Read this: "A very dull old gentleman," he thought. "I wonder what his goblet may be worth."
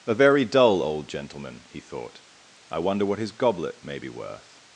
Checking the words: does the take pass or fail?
pass